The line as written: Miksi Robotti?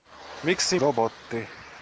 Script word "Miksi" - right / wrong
right